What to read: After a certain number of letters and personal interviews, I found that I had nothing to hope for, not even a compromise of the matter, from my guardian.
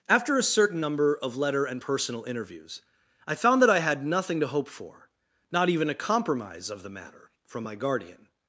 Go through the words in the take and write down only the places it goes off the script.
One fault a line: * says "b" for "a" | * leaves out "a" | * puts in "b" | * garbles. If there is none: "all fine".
* says "letter" for "letters"